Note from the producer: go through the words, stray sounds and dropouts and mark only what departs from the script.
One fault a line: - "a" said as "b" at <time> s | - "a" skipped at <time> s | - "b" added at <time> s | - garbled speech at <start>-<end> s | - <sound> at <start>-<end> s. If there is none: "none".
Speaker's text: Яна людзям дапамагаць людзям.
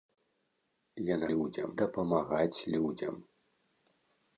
none